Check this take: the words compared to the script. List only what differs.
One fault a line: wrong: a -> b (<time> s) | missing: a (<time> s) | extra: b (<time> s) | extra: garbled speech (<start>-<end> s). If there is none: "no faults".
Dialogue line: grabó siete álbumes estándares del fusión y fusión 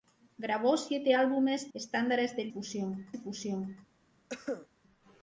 no faults